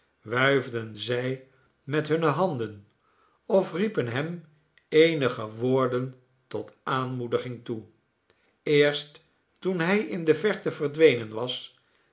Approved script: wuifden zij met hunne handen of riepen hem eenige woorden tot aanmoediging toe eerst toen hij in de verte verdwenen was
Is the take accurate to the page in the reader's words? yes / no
yes